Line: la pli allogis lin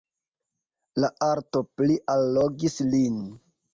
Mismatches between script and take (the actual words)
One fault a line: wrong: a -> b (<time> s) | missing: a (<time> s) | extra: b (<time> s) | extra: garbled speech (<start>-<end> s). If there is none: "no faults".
extra: arto (1.3 s)